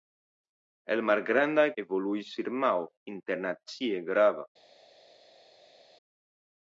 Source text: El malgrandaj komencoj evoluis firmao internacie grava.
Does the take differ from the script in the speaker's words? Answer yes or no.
yes